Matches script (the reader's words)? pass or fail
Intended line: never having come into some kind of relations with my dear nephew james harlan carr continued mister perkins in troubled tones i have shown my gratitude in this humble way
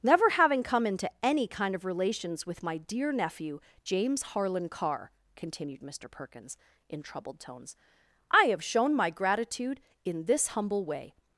fail